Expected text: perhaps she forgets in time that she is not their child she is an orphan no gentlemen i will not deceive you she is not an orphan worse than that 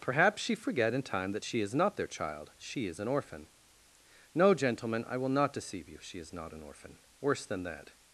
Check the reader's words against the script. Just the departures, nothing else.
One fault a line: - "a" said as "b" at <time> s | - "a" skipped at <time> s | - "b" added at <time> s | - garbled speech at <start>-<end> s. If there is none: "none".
- "forgets" said as "forget" at 0.6 s